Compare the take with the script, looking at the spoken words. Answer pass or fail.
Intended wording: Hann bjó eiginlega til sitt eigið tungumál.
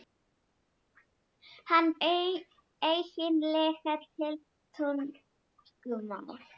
fail